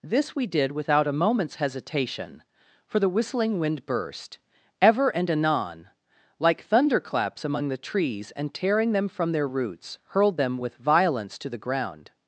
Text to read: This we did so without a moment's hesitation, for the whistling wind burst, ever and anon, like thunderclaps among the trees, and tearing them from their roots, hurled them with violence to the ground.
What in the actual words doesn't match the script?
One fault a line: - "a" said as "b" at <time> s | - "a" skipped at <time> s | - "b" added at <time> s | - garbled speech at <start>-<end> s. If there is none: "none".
- "so" skipped at 0.7 s